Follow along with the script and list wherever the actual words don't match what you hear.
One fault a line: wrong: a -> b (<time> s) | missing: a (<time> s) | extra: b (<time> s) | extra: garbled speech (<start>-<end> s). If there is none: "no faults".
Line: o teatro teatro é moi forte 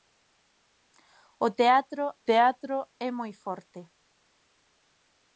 no faults